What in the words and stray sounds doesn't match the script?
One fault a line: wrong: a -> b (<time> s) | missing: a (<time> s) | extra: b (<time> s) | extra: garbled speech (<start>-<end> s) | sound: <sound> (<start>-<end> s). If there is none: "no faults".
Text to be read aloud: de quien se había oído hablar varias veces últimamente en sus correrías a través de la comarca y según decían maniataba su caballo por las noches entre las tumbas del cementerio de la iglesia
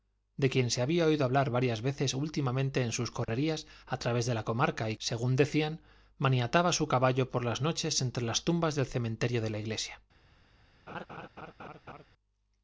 sound: dropout (3.2-3.3 s)
sound: laugh (10.9-12.1 s)